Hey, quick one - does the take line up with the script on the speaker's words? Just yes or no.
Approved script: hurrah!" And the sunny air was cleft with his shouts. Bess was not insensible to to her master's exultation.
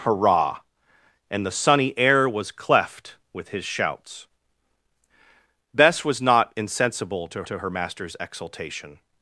yes